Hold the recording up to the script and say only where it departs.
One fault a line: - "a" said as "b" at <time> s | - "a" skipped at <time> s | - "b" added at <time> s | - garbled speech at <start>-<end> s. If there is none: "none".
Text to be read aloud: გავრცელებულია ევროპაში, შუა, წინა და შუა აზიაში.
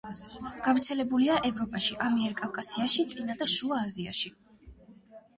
- "შუა" said as "ამიერკავკასიაში" at 2.1 s